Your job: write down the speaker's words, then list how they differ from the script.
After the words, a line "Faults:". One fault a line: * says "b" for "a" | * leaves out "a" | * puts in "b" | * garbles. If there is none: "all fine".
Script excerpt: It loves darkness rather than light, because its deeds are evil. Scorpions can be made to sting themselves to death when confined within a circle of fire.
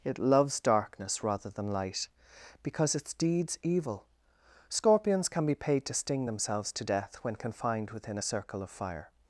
It loves darkness rather than light, because its deeds evil. Scorpions can be paid to sting themselves to death when confined within a circle of fire.
Faults:
* leaves out "are"
* says "paid" for "made"